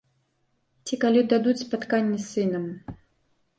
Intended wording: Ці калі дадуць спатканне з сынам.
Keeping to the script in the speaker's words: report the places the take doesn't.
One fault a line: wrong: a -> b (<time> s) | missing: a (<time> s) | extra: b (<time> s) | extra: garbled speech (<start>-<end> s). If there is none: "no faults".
no faults